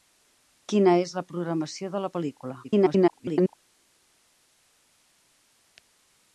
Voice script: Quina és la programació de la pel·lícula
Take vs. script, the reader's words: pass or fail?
fail